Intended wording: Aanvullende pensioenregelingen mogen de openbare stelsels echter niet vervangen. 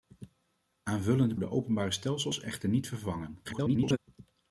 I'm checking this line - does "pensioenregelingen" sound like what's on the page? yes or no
no